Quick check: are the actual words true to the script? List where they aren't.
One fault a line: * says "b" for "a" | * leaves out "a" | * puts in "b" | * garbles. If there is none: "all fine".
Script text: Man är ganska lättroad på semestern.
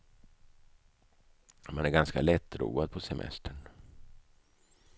all fine